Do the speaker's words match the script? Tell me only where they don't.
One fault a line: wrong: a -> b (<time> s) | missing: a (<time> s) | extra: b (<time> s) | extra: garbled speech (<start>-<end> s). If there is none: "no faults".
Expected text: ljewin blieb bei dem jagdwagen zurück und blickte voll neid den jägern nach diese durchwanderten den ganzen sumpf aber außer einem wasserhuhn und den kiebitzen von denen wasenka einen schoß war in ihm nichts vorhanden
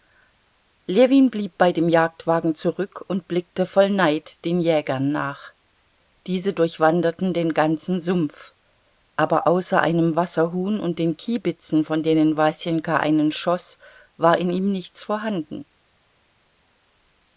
no faults